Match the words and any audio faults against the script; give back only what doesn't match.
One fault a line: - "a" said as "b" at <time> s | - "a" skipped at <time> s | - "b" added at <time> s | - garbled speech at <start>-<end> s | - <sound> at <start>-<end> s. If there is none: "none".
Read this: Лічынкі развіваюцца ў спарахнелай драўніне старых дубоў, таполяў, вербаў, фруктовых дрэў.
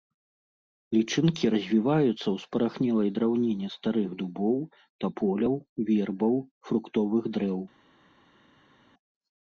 none